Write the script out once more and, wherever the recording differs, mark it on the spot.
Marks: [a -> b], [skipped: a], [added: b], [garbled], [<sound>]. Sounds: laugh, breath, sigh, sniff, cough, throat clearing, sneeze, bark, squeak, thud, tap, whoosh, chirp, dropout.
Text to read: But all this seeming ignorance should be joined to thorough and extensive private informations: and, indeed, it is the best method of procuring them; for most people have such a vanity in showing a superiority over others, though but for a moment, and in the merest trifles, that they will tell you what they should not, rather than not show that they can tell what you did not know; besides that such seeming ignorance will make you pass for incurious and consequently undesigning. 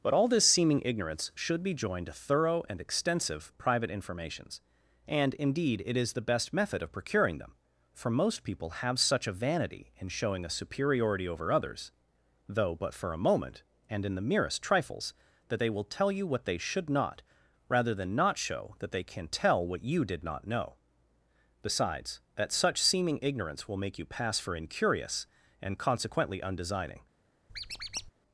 But all this seeming ignorance should be joined to thorough and extensive private informations: and, indeed, it is the best method of procuring them; for most people have such a vanity in showing a superiority over others, though but for a moment, and in the merest trifles, that they will tell you what they should not, rather than not show that they can tell what you did not know; besides that such seeming ignorance will make you pass for incurious and consequently undesigning. [squeak]